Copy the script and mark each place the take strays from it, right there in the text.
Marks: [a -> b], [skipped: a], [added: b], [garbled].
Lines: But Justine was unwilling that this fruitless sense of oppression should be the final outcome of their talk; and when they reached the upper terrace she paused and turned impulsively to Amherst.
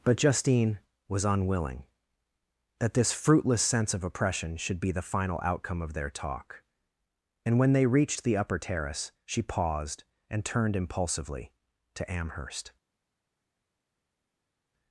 But Justine was unwilling that this fruitless sense of oppression should be the final outcome of their talk; and when they reached the upper terrace she paused and turned impulsively to Amherst.